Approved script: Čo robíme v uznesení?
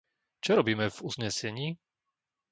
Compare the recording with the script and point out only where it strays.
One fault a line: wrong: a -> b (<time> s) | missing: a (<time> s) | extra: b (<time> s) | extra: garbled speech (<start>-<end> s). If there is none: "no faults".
no faults